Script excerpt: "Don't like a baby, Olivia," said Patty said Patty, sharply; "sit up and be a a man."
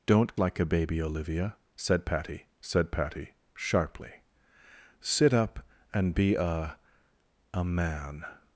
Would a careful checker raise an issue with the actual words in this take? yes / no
no